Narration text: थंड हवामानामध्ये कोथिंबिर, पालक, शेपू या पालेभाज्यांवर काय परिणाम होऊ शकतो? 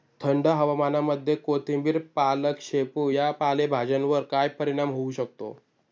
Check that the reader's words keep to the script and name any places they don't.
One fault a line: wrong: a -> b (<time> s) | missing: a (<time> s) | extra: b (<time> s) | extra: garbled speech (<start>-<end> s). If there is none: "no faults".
no faults